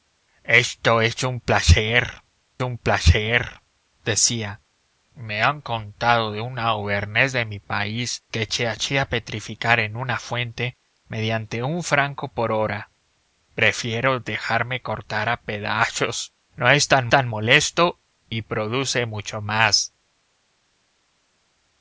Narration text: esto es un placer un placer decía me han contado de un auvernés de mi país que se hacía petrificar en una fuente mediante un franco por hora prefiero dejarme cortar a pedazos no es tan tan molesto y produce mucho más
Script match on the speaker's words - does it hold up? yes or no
yes